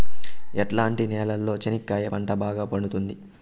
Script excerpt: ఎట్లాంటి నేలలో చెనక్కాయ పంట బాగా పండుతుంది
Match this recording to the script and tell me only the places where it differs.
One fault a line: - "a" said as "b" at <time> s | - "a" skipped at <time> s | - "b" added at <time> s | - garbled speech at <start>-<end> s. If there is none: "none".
none